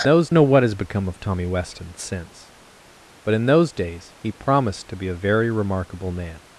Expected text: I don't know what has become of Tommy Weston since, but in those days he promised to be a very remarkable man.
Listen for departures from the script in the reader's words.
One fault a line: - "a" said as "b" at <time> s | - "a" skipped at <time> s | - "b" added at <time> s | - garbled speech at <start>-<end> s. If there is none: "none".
- "don't" said as "those" at 0.0 s